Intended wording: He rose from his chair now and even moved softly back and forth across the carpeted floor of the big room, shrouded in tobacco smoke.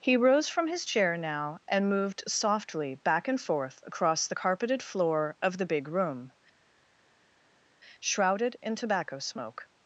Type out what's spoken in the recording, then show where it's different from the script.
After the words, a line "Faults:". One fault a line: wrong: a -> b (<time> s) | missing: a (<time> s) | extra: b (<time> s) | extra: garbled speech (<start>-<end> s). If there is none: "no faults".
He rose from his chair now and moved softly back and forth across the carpeted floor of the big room, shrouded in tobacco smoke.
Faults:
missing: even (1.9 s)